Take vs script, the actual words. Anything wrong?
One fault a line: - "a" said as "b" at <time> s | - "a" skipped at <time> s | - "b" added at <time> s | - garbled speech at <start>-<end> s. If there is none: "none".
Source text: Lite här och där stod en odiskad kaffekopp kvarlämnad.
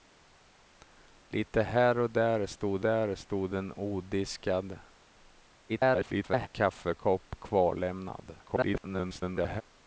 - "där stod" added at 2.8 s
- garbled speech at 5.7-6.5 s
- garbled speech at 8.4-9.6 s